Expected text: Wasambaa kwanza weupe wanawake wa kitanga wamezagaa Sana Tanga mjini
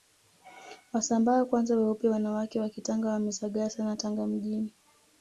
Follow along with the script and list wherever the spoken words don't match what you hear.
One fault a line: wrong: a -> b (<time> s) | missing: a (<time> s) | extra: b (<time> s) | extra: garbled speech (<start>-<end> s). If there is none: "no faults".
no faults